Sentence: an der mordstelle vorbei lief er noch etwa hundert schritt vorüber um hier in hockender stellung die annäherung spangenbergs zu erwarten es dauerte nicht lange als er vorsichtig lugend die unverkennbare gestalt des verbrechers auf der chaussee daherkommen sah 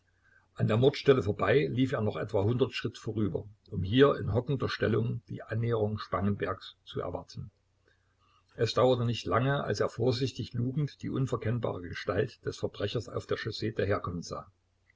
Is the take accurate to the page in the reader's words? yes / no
yes